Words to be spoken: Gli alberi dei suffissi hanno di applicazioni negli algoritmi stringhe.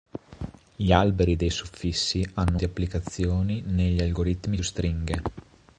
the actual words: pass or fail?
pass